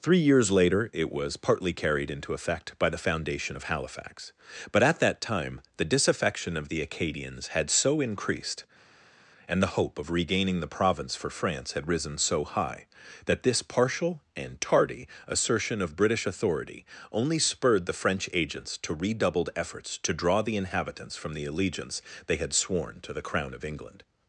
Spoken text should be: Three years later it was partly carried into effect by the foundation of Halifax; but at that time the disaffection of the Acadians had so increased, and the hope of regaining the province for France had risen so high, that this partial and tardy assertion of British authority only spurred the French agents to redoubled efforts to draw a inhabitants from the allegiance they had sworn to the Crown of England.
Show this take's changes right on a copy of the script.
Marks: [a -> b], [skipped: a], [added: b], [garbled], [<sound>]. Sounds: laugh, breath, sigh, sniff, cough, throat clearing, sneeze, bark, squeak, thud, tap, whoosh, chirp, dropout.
Three years later it was partly carried into effect by the foundation of Halifax; but at that time the disaffection of the Acadians had so increased, and the hope of regaining the province for France had risen so high, that this partial and tardy assertion of British authority only spurred the French agents to redoubled efforts to draw [a -> the] inhabitants from the allegiance they had sworn to the Crown of England.